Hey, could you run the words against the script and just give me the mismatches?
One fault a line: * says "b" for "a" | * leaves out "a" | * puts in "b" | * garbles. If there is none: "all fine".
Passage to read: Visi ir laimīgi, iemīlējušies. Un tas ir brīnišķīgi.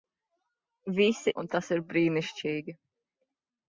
* leaves out "ir laimīgi iemīlējušies"